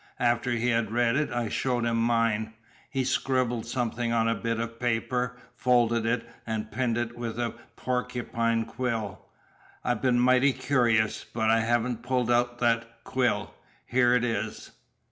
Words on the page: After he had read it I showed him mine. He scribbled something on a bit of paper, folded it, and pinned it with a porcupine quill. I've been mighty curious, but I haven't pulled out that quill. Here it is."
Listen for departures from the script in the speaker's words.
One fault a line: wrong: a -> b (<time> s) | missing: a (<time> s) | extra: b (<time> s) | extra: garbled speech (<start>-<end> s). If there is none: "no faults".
no faults